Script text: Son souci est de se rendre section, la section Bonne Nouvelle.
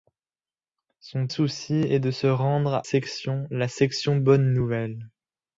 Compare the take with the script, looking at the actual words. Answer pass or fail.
pass